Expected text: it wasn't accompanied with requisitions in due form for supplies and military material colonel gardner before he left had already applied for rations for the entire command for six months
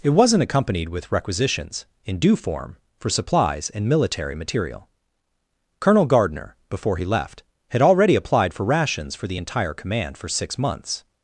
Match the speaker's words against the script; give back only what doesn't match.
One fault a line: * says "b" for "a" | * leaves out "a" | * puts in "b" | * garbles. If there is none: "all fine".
all fine